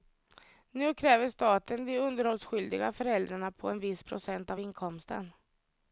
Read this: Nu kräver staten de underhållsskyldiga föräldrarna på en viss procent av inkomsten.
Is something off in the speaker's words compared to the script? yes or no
no